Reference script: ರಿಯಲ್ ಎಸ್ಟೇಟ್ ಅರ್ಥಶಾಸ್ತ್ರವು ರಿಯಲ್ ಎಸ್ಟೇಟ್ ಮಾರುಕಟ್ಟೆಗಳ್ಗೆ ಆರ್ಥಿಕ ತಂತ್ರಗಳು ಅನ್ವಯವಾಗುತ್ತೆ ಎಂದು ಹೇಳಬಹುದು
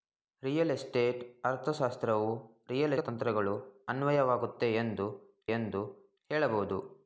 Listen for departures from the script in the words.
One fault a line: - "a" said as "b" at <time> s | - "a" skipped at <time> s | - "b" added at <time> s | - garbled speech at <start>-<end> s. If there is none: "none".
- "ಎಸ್ಟೇಟ್ ಮಾರುಕಟ್ಟೆಗಳ್ಗೆ ಆರ್ಥಿಕ" skipped at 3.0 s
- "ಎಂದು" added at 5.5 s